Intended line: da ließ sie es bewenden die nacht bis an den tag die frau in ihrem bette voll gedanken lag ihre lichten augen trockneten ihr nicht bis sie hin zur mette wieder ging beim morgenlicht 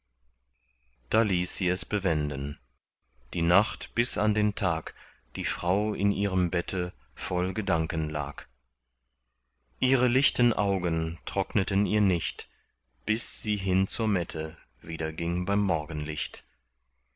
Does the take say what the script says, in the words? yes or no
yes